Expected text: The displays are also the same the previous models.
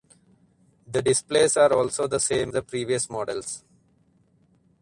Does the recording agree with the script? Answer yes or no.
yes